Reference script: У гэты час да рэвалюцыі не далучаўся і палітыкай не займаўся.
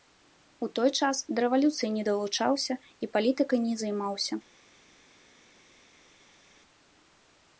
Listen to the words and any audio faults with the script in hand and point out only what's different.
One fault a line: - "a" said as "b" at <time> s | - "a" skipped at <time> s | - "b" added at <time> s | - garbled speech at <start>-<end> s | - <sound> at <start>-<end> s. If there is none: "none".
- "гэты" said as "той" at 0.8 s